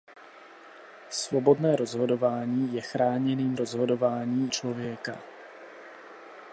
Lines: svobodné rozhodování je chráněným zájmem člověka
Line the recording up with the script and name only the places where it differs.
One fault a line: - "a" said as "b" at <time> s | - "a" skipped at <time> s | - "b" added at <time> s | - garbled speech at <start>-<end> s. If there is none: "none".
- "zájmem" said as "rozhodování" at 3.5 s